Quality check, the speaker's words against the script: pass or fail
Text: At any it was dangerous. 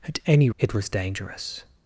pass